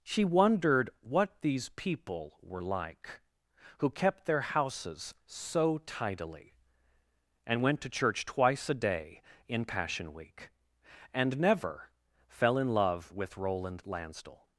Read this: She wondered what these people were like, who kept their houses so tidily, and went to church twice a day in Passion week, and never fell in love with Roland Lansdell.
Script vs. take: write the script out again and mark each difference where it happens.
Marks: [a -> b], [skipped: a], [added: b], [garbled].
She wondered what these people were like, who kept their houses so tidily, and went to church twice a day in Passion week, and never fell in love with Roland Lansdell.